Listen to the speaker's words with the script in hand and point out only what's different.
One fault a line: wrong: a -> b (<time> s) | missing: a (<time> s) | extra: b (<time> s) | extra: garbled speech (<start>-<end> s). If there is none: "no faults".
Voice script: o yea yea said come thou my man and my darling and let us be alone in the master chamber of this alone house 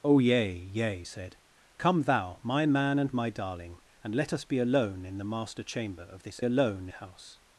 no faults